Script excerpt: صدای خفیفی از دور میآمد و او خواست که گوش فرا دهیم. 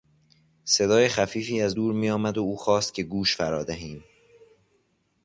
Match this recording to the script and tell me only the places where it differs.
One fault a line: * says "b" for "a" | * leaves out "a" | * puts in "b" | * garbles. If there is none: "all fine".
all fine